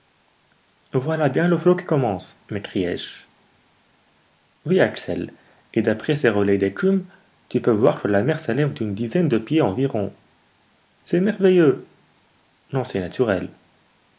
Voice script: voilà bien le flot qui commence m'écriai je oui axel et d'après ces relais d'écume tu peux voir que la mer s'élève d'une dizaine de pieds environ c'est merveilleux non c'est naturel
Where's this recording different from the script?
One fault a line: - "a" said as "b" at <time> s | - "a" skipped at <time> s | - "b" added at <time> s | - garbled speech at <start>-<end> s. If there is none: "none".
none